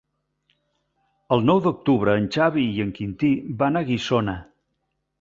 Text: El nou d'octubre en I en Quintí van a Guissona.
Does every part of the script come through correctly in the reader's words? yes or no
no